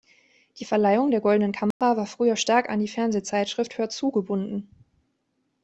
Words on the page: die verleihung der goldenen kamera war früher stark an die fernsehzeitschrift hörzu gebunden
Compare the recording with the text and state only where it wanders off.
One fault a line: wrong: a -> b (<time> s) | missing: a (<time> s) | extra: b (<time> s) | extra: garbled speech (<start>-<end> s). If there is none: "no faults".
no faults